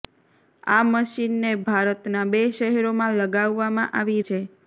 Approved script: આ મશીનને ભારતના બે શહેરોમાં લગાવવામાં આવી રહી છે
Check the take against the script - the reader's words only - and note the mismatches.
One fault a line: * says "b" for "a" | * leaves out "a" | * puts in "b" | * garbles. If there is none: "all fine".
* leaves out "રહી"